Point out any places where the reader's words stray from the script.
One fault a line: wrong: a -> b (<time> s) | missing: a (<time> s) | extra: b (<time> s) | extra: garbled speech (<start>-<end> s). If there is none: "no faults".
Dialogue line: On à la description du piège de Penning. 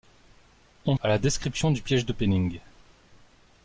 no faults